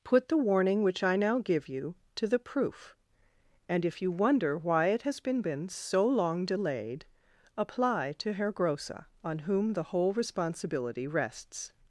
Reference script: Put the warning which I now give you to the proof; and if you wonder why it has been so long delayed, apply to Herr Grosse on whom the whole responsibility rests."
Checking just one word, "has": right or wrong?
right